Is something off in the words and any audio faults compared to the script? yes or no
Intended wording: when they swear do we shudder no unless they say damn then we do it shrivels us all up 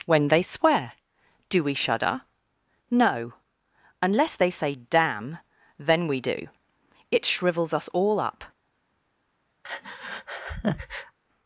yes